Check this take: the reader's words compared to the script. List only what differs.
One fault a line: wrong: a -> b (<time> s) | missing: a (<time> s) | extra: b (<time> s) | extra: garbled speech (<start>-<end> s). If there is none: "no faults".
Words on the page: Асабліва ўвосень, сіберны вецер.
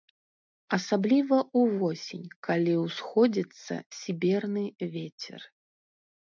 extra: калі ўсходзіцца (2.5 s)